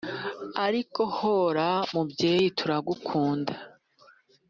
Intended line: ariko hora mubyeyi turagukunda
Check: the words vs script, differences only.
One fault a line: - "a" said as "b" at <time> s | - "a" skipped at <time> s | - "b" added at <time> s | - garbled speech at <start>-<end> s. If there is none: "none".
none